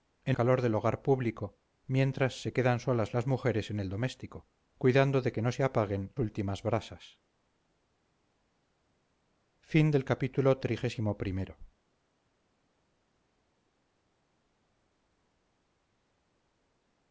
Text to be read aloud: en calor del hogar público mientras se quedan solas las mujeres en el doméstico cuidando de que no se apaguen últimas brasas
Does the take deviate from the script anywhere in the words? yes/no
no